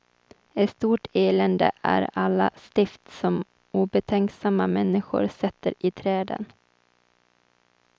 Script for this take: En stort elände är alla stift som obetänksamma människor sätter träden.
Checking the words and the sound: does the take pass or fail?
fail